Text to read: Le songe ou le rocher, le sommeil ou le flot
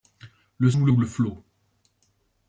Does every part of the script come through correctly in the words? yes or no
no